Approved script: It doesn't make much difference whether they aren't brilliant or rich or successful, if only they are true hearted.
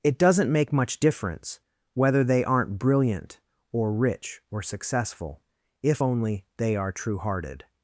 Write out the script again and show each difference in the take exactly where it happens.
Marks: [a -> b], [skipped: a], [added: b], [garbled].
It doesn't make much difference whether they aren't brilliant or rich or successful, if only they are true hearted.